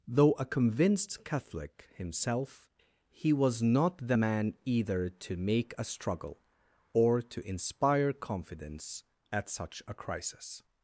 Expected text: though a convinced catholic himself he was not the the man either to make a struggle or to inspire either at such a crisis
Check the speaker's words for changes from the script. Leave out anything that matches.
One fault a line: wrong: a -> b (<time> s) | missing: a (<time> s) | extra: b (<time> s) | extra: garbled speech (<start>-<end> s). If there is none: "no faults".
missing: the (4.2 s)
wrong: either -> confidence (8.1 s)